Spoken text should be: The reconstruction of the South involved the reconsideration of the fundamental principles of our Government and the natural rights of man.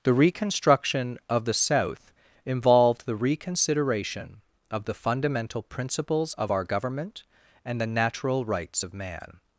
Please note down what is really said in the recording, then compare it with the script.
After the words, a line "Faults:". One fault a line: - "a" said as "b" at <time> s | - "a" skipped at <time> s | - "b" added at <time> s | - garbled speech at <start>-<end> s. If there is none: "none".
The reconstruction of the South involved the reconsideration of the fundamental principles of our Government and the natural rights of man.
Faults:
none